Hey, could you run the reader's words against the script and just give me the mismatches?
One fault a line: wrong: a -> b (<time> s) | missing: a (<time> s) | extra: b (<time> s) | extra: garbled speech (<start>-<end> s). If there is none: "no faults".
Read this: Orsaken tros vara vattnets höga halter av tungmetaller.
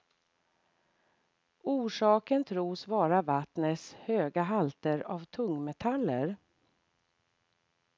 no faults